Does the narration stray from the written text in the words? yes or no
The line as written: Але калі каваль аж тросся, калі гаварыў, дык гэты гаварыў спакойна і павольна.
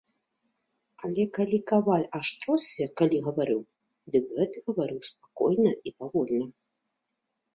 no